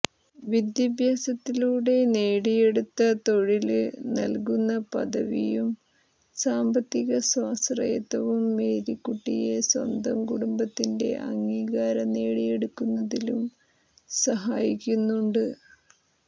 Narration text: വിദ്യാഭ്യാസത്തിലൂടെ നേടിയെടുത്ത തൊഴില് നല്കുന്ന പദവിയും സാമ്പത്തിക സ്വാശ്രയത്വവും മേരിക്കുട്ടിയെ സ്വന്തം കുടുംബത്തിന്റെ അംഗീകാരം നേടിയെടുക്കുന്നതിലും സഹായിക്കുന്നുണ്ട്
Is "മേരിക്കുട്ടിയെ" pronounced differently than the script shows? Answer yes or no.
no